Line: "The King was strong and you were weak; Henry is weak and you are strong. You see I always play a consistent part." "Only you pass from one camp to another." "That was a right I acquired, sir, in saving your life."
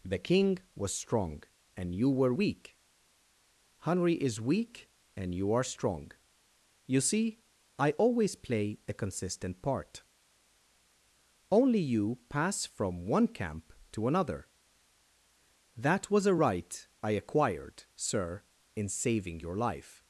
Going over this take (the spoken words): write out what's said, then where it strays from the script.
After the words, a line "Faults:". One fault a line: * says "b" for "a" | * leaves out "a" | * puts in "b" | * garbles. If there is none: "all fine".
"The King was strong and you were weak; Henry is weak and you are strong. You see I always play a consistent part." "Only you pass from one camp to another." "That was a right I acquired, sir, in saving your life."
Faults:
all fine